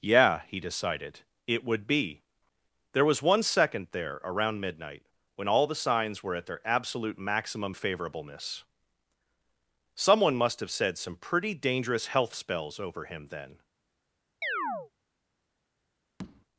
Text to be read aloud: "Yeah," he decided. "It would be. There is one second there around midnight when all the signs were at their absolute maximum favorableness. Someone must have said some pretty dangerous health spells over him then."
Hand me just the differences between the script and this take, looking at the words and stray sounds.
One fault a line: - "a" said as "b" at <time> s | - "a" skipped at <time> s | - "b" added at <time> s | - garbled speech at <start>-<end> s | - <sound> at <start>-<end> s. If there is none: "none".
- "is" said as "was" at 3.0 s
- chirp at 14.4-14.9 s
- tap at 16.2-16.5 s